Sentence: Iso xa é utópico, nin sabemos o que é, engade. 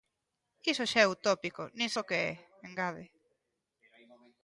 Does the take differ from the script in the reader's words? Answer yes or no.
yes